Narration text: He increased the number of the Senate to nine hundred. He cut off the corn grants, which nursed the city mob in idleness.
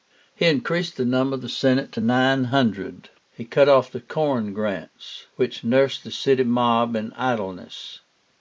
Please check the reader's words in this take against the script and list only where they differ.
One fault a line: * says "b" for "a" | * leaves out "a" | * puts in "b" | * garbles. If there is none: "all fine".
all fine